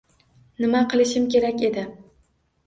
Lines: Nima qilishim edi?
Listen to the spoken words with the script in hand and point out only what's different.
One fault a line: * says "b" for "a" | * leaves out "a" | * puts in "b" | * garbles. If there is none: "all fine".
* puts in "kerak"